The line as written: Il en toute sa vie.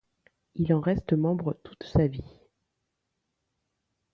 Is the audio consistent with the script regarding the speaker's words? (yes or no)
no